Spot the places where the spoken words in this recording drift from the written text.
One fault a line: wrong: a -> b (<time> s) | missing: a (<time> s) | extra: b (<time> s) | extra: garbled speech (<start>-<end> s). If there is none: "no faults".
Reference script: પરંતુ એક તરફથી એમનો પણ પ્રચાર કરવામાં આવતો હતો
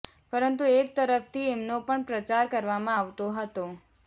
no faults